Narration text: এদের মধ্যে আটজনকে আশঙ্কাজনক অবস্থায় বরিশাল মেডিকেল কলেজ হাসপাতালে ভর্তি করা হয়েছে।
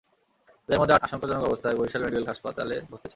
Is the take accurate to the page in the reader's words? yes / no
no